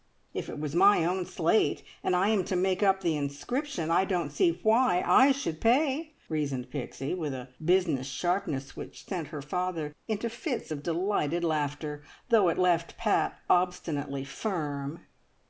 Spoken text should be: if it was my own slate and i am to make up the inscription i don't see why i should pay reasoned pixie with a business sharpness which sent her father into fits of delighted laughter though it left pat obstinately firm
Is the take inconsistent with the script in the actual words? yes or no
no